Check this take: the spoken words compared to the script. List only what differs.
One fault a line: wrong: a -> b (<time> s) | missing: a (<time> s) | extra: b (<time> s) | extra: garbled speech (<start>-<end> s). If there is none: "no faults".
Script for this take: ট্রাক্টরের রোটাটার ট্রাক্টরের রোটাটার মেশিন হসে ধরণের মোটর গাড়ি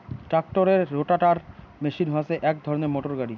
missing: ট্রাক্টরের রোটাটার (1.4 s)
extra: এক (2.4 s)